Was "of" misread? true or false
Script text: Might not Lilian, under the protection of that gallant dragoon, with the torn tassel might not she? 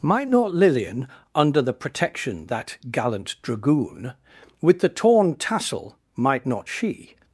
true